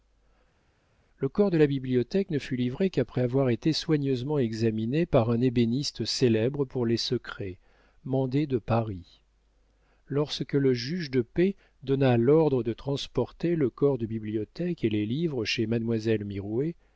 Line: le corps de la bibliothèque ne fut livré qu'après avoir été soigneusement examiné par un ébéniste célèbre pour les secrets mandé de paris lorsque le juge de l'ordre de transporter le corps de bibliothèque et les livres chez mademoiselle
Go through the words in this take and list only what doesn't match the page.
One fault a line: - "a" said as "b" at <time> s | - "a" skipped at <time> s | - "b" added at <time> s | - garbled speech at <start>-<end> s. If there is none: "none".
- "paix donna" added at 11.2 s